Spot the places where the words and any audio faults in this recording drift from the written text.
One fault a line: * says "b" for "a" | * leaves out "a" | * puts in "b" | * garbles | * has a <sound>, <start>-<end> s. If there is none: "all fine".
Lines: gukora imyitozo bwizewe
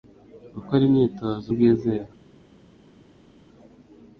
all fine